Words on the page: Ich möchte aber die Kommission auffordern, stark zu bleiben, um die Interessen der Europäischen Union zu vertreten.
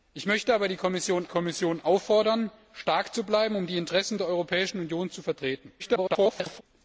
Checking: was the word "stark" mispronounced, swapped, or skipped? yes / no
no